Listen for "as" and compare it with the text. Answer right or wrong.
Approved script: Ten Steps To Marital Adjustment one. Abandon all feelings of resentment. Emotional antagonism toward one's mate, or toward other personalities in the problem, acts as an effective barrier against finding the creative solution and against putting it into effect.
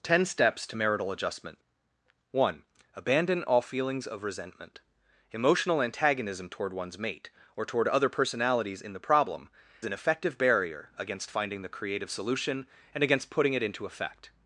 wrong